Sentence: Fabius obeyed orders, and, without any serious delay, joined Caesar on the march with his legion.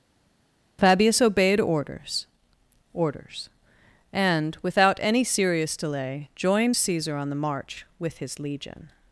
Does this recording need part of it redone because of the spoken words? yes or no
yes